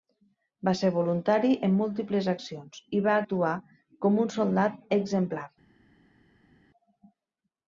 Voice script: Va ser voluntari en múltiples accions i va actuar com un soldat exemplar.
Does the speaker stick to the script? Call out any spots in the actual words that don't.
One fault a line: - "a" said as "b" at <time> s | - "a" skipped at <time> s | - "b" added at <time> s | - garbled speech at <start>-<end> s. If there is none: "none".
none